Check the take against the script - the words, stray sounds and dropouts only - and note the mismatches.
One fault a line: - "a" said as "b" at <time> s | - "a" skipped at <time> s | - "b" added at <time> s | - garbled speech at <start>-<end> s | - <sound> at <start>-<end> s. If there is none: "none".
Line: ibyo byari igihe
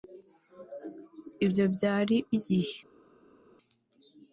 none